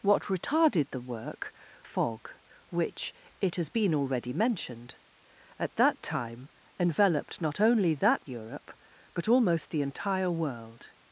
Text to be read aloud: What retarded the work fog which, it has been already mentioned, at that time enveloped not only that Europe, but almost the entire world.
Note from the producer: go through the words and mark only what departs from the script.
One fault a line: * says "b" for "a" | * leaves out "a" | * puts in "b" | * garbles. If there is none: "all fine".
all fine